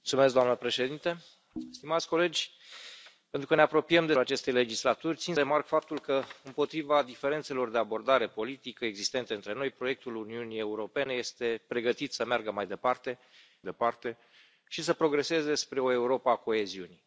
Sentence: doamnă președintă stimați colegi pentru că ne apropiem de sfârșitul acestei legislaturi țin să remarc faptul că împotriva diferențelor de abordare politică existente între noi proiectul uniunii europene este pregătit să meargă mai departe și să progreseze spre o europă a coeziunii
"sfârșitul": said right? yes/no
no